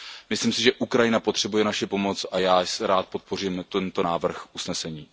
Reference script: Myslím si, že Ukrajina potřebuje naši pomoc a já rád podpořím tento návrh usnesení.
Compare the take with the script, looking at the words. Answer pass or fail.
pass